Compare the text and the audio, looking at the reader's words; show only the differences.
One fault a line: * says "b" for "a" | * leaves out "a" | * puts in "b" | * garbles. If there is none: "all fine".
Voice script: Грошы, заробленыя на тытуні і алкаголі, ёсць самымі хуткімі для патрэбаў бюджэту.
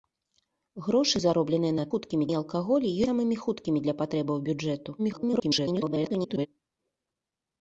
* says "хуткімі" for "тытуні"
* leaves out "ёсць"
* garbles